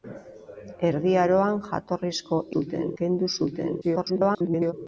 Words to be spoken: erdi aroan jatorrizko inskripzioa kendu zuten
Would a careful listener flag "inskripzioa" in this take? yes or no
yes